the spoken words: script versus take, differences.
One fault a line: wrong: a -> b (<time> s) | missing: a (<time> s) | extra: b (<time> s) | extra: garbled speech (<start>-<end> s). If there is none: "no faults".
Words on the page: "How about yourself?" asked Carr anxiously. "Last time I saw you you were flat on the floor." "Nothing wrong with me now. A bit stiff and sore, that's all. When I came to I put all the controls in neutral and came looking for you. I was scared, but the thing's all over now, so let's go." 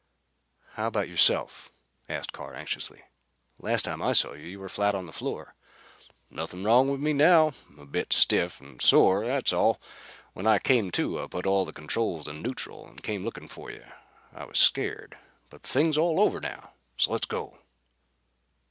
no faults